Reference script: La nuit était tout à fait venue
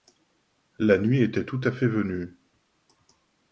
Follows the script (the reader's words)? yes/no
yes